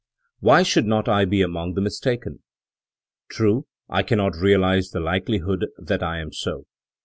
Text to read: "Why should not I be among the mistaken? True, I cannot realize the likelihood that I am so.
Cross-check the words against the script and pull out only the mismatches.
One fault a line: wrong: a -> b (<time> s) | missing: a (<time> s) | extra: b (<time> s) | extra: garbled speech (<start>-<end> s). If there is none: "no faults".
no faults